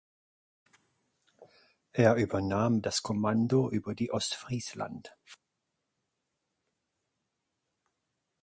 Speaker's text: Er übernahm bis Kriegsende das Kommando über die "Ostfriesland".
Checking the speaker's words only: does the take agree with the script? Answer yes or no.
no